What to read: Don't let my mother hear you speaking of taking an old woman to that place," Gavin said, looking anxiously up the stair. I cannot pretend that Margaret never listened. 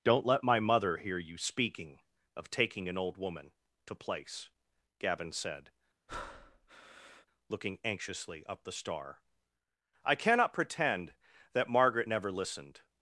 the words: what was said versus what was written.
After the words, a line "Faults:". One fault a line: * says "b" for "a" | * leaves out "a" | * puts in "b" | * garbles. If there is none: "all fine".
Don't let my mother hear you speaking of taking an old woman to place," Gavin said, looking anxiously up the star. I cannot pretend that Margaret never listened.
Faults:
* leaves out "that"
* says "star" for "stair"